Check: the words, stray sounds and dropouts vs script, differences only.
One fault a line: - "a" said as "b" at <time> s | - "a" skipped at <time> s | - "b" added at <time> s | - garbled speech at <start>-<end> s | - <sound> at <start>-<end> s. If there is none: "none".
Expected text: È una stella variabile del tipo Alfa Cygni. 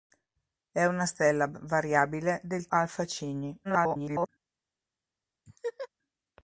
- "tipo" skipped at 2.7 s
- garbled speech at 3.6-4.3 s
- laugh at 5.5-5.9 s